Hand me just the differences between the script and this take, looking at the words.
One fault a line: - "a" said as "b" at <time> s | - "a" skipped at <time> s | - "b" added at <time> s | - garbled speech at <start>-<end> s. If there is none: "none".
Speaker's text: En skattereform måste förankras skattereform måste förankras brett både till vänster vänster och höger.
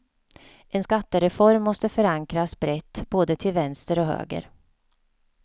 - "skattereform måste förankras" skipped at 2.6 s
- "vänster" skipped at 4.0 s